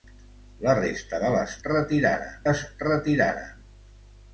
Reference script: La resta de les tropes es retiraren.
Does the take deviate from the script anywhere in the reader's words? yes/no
yes